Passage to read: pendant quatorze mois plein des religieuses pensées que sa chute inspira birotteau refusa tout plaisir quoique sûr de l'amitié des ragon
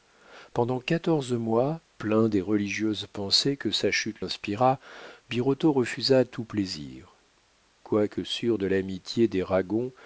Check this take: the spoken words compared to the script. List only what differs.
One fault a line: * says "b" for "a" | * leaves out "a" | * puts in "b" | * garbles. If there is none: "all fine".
all fine